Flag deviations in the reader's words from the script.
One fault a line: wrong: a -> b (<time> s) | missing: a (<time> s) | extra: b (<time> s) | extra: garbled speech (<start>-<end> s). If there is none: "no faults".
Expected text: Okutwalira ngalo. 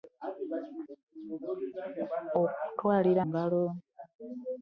no faults